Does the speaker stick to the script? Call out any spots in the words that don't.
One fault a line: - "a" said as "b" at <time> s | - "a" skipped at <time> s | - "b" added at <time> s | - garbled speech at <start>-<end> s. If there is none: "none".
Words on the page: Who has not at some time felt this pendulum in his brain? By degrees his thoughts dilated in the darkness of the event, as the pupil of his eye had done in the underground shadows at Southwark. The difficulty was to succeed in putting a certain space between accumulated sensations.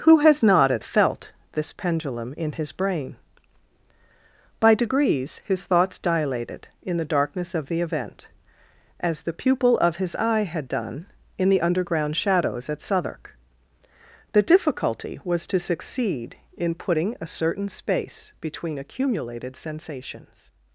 - "some time" skipped at 0.8 s